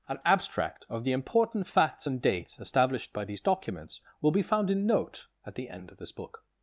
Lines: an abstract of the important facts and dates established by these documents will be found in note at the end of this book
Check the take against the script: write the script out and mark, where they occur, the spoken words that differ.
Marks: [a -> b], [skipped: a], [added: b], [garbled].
an abstract of the important facts and dates established by these documents will be found in note at the end of this book